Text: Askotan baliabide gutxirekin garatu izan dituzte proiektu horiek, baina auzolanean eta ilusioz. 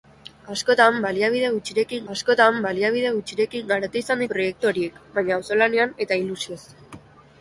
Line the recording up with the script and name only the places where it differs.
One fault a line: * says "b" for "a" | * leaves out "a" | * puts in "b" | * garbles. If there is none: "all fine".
* puts in "askotan baliabide gutxirekin"
* leaves out "dituzte"